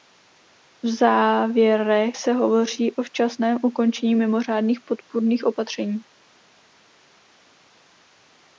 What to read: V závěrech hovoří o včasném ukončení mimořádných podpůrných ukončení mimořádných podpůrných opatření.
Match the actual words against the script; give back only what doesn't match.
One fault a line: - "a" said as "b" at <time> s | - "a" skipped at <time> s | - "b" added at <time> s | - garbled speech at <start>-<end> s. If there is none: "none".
- "se" added at 2.1 s
- "ukončení mimořádných podpůrných" skipped at 5.4 s